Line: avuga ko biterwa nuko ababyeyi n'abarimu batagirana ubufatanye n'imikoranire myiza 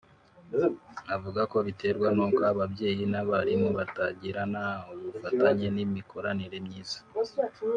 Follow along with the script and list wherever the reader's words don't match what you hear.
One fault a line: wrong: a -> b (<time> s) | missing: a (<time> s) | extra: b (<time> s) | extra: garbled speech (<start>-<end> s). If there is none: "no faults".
no faults